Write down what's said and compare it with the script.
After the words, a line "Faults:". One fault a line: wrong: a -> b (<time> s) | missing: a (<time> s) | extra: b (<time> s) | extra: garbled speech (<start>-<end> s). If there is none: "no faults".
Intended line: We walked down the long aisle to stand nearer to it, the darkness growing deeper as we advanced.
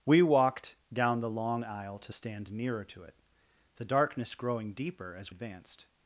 We walked down the long aisle to stand nearer to it, the darkness growing deeper as advanced.
Faults:
missing: we (5.3 s)